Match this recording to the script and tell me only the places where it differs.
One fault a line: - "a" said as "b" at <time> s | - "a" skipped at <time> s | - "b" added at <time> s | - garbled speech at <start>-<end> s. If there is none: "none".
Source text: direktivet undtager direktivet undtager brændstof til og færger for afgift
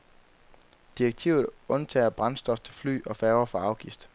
- "direktivet undtager" skipped at 2.1 s
- "fly" added at 2.7 s